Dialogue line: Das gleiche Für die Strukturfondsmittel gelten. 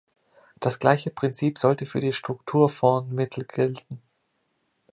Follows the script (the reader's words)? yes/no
no